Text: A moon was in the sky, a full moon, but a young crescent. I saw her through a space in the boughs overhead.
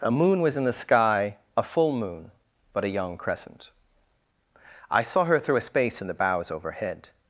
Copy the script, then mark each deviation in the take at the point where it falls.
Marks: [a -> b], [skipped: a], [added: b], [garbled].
A moon was in the sky, a full moon, but a young crescent. I saw her through a space in the boughs overhead.